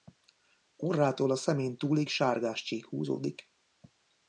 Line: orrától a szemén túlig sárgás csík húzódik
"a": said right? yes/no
yes